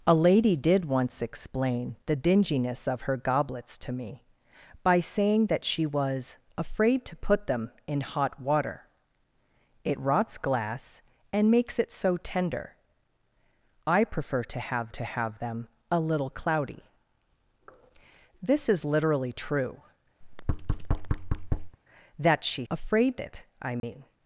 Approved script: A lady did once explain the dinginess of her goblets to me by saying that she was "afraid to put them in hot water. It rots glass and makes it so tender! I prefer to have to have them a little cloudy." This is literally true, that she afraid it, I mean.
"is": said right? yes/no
yes